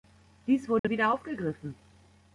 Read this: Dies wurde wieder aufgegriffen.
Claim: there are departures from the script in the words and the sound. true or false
true